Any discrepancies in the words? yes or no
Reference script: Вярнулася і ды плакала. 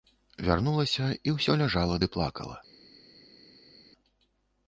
yes